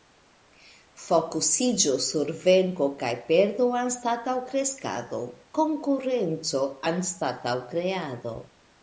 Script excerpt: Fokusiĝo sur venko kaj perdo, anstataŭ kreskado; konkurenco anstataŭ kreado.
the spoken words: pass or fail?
pass